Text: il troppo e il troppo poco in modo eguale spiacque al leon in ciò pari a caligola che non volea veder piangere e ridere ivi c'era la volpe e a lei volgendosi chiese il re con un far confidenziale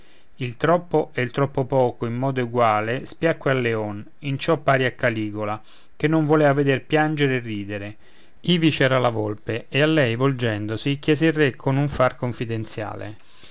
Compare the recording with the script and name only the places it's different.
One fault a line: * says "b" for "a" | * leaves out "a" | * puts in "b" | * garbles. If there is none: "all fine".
all fine